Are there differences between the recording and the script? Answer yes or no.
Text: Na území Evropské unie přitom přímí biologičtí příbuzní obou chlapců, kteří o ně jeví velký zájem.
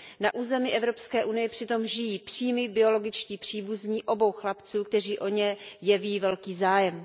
yes